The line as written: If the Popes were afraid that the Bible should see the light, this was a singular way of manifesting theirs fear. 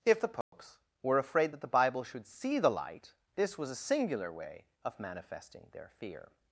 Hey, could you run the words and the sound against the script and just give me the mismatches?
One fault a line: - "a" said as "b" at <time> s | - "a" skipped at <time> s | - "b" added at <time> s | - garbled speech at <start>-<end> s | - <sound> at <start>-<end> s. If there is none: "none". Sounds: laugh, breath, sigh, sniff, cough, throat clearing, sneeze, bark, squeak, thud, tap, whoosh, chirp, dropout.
- dropout at 0.4-0.5 s
- "theirs" said as "their" at 5.7 s